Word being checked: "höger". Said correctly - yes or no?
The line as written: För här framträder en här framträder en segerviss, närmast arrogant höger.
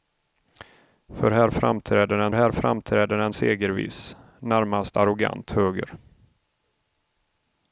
yes